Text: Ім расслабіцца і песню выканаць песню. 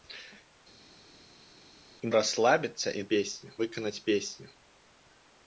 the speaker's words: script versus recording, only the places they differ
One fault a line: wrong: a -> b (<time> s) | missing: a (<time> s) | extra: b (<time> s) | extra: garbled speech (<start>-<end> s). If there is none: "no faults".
no faults